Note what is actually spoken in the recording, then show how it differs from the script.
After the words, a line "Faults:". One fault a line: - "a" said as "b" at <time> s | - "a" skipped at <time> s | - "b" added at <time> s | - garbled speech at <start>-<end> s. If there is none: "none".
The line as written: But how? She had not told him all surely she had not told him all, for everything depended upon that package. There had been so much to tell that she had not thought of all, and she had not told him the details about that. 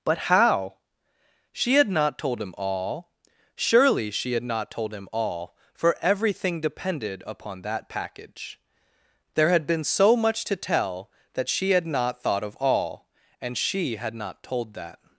But how? She had not told him all surely she had not told him all, for everything depended upon that package. There had been so much to tell that she had not thought of all, and she had not told that.
Faults:
- "him the details about" skipped at 14.7 s